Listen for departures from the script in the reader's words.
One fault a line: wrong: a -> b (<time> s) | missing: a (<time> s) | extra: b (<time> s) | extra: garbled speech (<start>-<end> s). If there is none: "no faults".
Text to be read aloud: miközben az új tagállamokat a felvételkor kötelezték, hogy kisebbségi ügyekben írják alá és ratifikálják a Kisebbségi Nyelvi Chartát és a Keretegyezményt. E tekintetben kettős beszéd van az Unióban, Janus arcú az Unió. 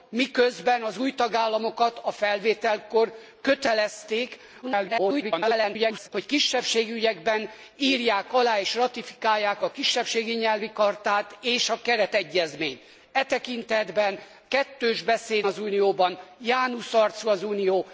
extra: garbled speech (4.6-6.1 s)
missing: van (15.4 s)